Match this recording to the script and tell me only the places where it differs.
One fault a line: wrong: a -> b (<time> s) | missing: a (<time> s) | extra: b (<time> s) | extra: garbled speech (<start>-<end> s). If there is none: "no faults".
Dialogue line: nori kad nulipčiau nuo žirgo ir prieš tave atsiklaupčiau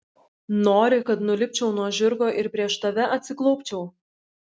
no faults